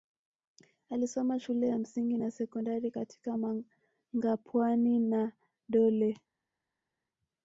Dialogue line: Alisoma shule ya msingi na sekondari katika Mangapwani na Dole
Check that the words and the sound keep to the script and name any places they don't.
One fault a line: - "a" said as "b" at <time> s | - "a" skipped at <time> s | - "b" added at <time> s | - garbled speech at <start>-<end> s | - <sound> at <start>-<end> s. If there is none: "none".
none